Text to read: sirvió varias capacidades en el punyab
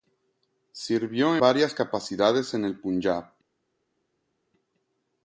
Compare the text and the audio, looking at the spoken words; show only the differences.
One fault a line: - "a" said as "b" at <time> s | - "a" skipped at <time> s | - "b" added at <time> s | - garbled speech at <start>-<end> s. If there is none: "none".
none